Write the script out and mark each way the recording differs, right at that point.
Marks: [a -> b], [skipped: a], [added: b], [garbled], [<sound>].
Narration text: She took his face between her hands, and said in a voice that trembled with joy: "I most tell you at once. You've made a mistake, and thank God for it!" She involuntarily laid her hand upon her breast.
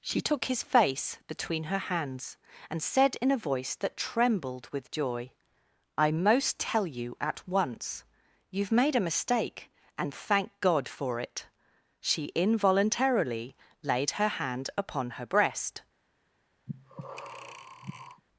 She took his face between her hands, and said in a voice that trembled with joy: "I most tell you at once. You've made a mistake, and thank God for it!" She involuntarily laid her hand upon her breast. [breath]